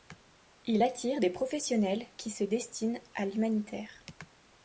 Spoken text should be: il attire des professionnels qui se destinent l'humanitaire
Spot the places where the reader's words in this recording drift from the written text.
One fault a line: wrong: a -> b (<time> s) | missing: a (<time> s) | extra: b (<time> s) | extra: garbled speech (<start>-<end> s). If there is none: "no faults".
extra: à (3.1 s)